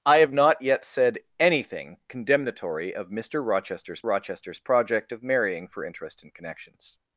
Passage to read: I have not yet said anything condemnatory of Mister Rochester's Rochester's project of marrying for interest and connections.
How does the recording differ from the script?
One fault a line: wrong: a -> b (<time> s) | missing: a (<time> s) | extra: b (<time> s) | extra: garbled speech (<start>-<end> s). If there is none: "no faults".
no faults